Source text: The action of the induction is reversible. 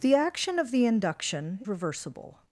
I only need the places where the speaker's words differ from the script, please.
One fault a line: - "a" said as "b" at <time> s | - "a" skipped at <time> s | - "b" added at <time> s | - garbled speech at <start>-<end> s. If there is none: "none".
- "is" skipped at 1.6 s